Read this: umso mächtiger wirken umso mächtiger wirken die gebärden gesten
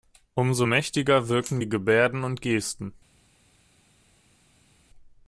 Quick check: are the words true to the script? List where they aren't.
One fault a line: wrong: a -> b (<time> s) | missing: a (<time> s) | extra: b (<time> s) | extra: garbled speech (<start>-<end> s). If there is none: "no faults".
missing: umso mächtiger wirken (1.6 s)
extra: und (2.2 s)